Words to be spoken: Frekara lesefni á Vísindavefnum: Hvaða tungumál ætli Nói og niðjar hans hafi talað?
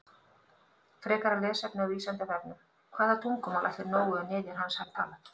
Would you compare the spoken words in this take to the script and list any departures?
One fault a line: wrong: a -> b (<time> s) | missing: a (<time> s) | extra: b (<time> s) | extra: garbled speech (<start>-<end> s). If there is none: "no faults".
no faults